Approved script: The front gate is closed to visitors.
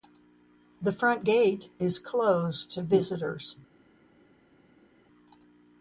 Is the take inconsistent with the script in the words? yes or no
no